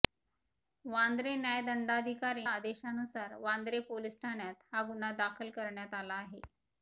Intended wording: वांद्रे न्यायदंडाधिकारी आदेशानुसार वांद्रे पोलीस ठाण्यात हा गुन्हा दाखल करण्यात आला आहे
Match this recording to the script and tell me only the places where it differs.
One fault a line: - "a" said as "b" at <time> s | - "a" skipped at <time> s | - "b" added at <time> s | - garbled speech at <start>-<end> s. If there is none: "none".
none